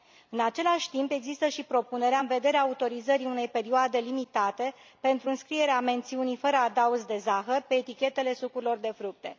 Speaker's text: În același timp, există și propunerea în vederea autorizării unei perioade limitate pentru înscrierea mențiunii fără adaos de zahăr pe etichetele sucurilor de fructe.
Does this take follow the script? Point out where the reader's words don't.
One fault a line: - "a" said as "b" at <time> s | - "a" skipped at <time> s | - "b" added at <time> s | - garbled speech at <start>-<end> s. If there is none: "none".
none